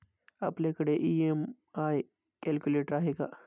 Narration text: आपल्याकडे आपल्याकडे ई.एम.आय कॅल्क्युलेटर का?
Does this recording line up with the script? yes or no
no